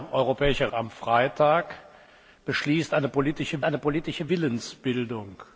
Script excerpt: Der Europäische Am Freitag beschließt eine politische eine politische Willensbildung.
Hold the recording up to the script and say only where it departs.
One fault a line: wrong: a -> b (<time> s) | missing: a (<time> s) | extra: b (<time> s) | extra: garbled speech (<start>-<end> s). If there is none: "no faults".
no faults